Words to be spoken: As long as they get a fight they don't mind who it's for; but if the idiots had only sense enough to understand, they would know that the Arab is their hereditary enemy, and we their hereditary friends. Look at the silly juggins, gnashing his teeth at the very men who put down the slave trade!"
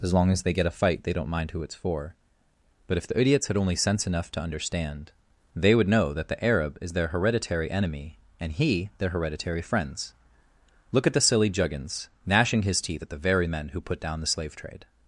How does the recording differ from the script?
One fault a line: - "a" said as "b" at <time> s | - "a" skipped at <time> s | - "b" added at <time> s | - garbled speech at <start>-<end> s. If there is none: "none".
- "we" said as "he" at 8.5 s